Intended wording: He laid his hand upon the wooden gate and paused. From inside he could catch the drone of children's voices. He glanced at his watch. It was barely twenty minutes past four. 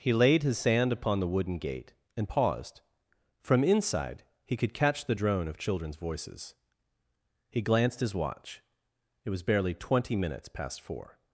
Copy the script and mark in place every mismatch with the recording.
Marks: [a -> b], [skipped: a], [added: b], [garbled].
He laid his [hand -> sand] upon the wooden gate and paused. From inside he could catch the drone of children's voices. He glanced [skipped: at] his watch. It was barely twenty minutes past four.